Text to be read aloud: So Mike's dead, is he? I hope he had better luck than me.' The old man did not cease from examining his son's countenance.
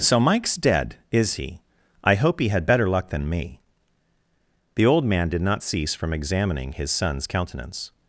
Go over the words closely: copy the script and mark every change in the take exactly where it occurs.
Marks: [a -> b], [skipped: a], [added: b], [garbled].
So Mike's dead, is he? I hope he had better luck than me.' The old man did not cease from examining his son's countenance.